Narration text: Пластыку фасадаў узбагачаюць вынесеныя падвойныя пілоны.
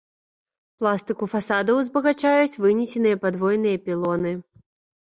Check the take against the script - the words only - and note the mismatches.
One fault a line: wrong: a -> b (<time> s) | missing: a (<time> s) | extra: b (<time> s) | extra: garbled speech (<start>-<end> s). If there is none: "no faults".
no faults